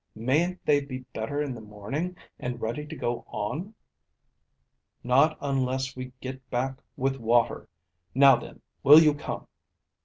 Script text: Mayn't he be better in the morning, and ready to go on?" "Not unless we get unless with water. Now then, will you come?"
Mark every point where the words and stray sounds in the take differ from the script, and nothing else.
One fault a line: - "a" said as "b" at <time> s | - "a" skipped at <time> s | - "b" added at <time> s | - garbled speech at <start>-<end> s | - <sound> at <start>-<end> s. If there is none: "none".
- "he" said as "they" at 0.7 s
- "unless" said as "back" at 6.5 s